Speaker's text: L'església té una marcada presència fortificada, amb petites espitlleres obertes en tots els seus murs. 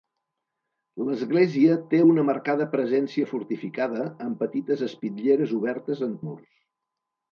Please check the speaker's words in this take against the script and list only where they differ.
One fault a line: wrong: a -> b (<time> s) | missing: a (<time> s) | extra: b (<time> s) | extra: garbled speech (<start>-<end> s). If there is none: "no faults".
missing: tots els seus (6.2 s)